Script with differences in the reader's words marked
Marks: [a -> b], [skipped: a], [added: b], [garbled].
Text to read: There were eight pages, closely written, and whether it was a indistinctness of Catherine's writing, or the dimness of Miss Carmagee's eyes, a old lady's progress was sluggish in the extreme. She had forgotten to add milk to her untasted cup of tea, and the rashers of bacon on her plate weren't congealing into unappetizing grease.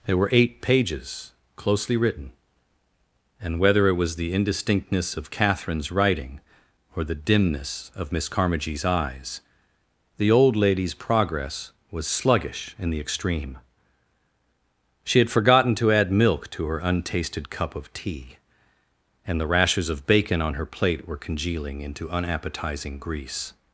There were eight pages, closely written, and whether it was [a -> the] indistinctness of Catherine's writing, or the dimness of Miss Carmagee's eyes, [a -> the] old lady's progress was sluggish in the extreme. She had forgotten to add milk to her untasted cup of tea, and the rashers of bacon on her plate [weren't -> were] congealing into unappetizing grease.